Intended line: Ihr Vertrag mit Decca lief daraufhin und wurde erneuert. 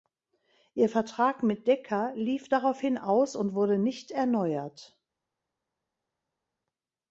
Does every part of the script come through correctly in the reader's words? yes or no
no